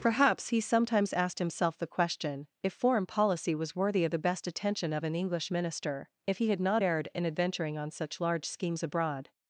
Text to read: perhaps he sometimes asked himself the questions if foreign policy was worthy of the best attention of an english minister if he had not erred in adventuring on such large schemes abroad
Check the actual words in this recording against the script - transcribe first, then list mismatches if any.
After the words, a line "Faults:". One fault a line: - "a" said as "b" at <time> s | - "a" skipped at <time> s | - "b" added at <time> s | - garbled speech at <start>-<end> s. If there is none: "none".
perhaps he sometimes asked himself the question if foreign policy was worthy of the best attention of an english minister if he had not erred in adventuring on such large schemes abroad
Faults:
- "questions" said as "question" at 1.9 s